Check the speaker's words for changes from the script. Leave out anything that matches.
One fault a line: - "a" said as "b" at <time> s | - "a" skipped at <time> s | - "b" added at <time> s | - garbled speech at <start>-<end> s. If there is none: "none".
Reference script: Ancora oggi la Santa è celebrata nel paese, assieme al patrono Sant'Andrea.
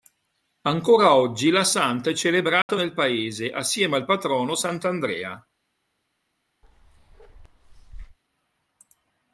none